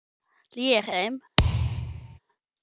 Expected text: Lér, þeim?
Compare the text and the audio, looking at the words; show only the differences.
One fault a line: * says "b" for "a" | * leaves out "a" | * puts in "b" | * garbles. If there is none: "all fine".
all fine